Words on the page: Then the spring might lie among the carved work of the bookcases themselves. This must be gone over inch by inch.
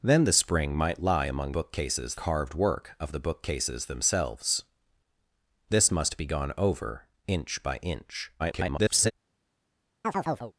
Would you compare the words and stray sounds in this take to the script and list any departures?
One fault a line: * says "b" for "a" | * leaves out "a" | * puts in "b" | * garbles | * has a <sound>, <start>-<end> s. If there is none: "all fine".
* says "bookcases" for "the"
* garbles
* has a chirp, 10.0-10.5 s